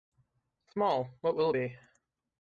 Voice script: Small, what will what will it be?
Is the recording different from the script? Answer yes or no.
yes